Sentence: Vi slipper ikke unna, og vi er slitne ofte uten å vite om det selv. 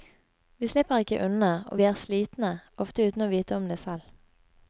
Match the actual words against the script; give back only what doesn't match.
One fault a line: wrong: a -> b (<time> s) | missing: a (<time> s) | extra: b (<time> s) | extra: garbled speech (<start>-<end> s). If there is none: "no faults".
no faults